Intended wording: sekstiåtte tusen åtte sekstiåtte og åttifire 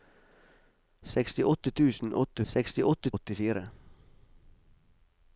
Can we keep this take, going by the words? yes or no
yes